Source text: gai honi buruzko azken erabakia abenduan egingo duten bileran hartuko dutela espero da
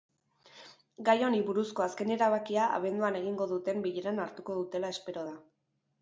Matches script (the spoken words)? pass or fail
pass